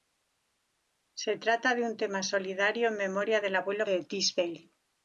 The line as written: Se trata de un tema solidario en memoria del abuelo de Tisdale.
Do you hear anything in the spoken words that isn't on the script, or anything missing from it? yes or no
no